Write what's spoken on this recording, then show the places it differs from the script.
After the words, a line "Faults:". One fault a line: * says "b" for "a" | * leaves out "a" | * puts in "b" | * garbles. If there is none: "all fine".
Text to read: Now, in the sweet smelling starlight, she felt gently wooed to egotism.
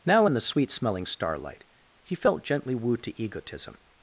Now, in the sweet smelling starlight, he felt gently wooed to egotism.
Faults:
* says "he" for "she"